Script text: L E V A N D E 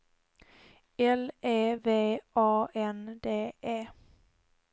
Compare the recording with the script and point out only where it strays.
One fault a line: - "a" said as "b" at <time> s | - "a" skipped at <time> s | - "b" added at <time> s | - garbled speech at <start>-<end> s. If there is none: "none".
none